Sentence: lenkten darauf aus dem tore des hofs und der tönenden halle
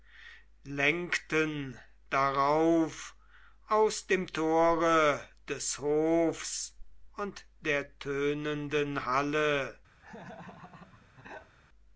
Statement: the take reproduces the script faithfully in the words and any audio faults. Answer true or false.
false